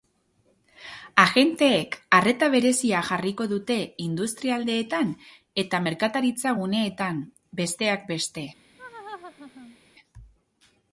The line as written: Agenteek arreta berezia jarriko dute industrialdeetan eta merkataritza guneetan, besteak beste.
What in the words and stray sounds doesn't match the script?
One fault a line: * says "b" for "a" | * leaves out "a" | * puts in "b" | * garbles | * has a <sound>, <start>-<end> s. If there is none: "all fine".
* has a laugh, 8.8-9.8 s